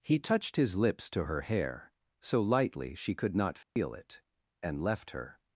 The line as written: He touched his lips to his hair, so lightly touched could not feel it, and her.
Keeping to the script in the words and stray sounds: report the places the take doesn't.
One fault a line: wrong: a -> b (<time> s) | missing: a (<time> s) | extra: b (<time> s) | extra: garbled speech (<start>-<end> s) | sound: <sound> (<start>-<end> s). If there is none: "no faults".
wrong: his -> her (1.2 s)
wrong: touched -> she (3.0 s)
sound: dropout (3.6-3.8 s)
extra: left (4.8 s)